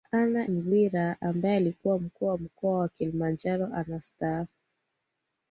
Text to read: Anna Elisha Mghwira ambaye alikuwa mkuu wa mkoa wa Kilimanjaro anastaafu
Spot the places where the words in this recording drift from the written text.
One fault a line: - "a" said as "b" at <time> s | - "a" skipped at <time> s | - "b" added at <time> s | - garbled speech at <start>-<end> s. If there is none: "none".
- "Elisha" skipped at 0.5 s